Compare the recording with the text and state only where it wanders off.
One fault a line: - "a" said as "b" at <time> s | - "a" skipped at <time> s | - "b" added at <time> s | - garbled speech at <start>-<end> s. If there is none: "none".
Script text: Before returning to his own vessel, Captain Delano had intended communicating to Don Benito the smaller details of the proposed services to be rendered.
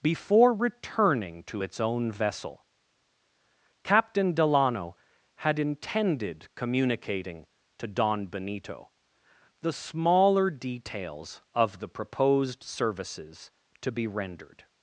- "his" said as "its" at 1.6 s